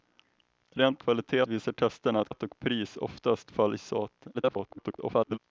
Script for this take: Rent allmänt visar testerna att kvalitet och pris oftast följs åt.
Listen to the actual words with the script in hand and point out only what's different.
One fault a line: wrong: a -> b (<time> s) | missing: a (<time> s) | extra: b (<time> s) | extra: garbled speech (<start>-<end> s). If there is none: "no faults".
wrong: allmänt -> kvalitet (1.0 s)
missing: kvalitet (2.3 s)
extra: garbled speech (4.3-5.4 s)